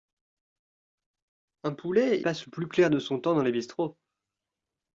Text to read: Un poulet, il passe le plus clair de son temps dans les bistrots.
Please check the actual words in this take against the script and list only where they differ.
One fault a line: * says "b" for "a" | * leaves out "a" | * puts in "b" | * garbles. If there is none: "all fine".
* leaves out "il"